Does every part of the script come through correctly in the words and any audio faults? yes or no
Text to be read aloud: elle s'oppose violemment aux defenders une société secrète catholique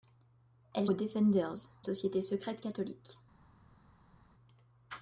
no